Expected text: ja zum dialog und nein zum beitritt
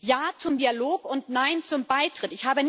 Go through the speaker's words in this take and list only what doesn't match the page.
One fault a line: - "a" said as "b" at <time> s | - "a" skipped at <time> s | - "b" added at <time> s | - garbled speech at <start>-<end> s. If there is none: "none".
none